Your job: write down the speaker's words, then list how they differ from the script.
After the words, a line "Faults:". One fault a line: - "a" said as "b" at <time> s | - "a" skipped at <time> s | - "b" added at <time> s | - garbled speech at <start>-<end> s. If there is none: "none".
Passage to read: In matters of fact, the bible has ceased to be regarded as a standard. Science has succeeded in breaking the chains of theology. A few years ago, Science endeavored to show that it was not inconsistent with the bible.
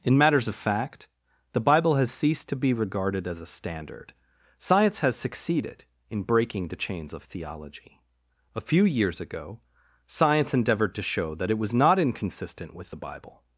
In matters of fact, the bible has ceased to be regarded as a standard. Science has succeeded in breaking the chains of theology. A few years ago, Science endeavored to show that it was not inconsistent with the bible.
Faults:
none